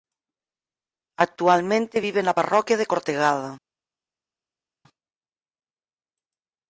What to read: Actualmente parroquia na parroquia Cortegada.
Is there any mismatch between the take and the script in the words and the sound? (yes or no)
yes